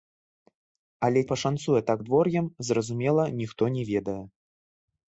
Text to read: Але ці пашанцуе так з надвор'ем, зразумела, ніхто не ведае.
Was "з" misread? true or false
true